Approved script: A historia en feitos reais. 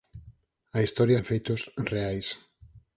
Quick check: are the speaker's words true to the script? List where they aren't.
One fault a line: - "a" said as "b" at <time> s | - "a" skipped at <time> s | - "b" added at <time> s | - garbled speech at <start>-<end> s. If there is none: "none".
none